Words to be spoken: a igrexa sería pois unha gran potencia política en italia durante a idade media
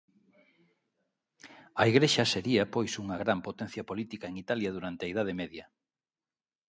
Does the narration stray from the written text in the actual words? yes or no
no